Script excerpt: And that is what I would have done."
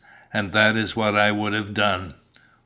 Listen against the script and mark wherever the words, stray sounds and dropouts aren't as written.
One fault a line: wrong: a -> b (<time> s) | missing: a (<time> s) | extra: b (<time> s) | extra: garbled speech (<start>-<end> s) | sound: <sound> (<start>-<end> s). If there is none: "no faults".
no faults